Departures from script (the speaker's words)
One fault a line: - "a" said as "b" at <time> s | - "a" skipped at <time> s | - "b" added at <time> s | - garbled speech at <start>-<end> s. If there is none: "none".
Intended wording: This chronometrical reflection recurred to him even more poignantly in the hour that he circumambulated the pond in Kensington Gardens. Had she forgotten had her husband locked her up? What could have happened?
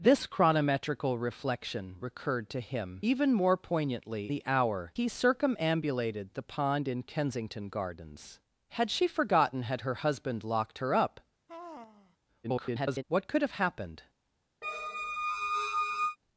- "in" skipped at 4.3 s
- "that" skipped at 4.9 s
- garbled speech at 12.4-13.0 s